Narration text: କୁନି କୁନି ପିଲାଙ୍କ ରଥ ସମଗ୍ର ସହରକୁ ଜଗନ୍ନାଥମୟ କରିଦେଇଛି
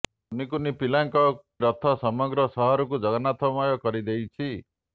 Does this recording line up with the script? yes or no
yes